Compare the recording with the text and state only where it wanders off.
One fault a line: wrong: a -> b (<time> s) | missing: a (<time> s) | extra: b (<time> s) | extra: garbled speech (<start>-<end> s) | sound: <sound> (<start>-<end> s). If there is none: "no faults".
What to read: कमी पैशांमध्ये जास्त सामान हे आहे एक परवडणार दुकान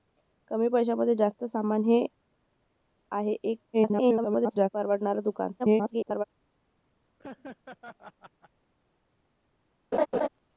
extra: garbled speech (3.7-4.7 s)
extra: garbled speech (5.6-6.2 s)
sound: laugh (7.2-8.5 s)
sound: laugh (9.9-10.3 s)